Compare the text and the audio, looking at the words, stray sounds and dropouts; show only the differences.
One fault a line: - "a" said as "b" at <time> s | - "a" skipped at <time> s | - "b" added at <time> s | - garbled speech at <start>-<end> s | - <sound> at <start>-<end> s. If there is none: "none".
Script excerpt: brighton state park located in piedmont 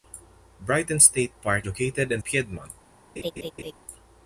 - laugh at 3.2-3.7 s